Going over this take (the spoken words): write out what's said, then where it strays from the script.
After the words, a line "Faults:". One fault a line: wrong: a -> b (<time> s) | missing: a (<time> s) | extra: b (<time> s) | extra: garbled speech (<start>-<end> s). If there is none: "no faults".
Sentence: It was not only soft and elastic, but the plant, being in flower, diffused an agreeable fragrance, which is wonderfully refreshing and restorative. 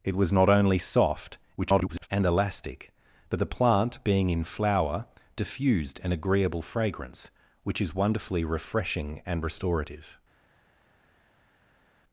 It was not only soft [garbled] and elastic, but the plant, being in flower, diffused an agreeable fragrance, which is wonderfully refreshing and restorative.
Faults:
extra: garbled speech (1.6-2.1 s)